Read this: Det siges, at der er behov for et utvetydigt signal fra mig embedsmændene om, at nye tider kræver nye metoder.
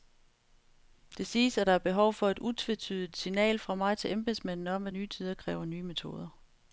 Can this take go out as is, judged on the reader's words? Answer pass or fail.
fail